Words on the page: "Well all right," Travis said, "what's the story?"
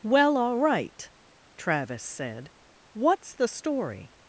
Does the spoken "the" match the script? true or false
true